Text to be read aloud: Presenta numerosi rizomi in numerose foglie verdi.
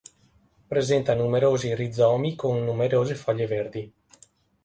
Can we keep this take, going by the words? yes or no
no